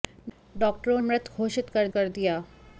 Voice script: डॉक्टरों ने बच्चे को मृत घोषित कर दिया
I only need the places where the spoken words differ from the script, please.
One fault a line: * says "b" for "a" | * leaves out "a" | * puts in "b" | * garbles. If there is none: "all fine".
* leaves out "ने बच्चे को"
* puts in "कर"